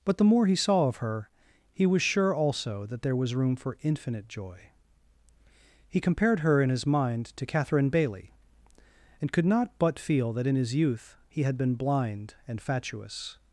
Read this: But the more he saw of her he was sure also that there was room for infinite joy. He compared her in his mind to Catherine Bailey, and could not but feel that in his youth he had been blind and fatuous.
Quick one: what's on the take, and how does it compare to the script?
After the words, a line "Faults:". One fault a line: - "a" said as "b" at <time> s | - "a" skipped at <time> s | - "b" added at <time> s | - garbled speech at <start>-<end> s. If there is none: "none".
But the more he saw of her he was sure also that there was room for infinite joy. He compared her in his mind to Catherine Bailey, and could not but feel that in his youth he had been blind and fatuous.
Faults:
none